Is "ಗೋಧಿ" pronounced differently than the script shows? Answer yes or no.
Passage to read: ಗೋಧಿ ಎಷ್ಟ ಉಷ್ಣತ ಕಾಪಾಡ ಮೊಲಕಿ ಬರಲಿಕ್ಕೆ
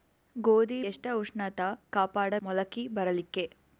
no